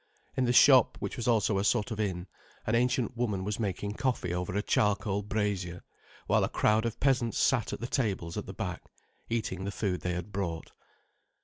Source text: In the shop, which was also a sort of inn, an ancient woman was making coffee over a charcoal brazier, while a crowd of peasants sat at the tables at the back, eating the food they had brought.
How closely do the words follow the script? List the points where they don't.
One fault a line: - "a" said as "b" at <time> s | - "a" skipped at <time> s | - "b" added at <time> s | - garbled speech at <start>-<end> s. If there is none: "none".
none